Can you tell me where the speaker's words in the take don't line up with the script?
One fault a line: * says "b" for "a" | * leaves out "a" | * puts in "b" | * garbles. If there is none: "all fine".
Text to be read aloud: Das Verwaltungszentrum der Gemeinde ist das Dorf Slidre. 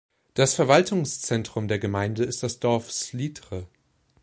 all fine